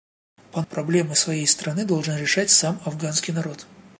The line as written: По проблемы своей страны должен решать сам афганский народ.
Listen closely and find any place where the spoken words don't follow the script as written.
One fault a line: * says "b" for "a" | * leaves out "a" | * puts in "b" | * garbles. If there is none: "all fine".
all fine